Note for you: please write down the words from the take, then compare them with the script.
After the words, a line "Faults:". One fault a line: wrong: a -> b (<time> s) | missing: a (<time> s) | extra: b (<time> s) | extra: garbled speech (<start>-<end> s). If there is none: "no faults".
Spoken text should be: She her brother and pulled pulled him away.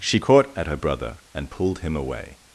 She caught at her brother and pulled him away.
Faults:
extra: caught at (0.2 s)
missing: pulled (1.8 s)